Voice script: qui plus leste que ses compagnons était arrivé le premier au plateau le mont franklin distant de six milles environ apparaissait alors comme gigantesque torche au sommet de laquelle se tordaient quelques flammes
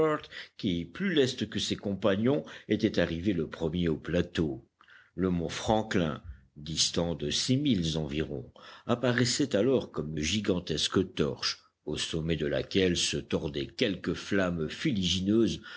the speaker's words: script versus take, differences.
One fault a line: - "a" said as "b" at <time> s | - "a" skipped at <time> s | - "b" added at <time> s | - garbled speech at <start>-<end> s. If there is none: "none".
none